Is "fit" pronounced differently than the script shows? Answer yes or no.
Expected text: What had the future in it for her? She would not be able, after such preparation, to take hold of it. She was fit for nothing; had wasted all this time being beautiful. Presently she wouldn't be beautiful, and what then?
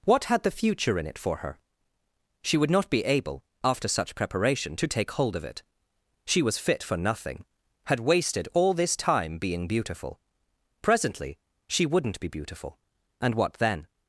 no